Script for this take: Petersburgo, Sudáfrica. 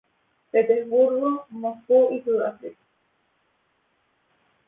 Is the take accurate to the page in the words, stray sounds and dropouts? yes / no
no